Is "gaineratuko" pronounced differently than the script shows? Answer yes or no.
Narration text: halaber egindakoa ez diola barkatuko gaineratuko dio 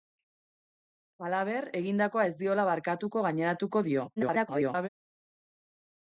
no